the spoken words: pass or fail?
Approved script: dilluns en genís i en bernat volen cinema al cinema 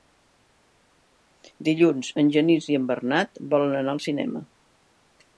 fail